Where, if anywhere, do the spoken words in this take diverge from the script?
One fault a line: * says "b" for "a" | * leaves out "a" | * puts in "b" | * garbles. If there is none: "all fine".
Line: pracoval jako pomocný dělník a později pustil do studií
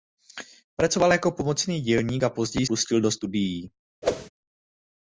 all fine